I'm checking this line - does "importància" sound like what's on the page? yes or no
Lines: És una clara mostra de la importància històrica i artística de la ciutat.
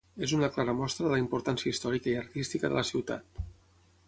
yes